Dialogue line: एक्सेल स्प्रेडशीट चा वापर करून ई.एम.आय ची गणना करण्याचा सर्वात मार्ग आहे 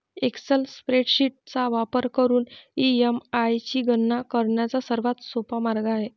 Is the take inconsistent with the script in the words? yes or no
yes